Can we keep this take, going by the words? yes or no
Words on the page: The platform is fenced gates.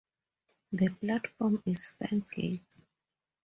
yes